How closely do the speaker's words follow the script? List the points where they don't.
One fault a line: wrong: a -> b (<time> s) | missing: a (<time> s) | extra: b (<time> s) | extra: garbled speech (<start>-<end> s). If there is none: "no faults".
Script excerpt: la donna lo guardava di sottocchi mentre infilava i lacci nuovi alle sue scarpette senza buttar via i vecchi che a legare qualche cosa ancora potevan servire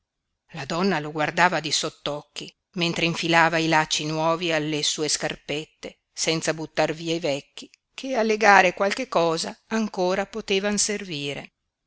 no faults